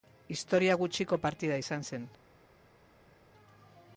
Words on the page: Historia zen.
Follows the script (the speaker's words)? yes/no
no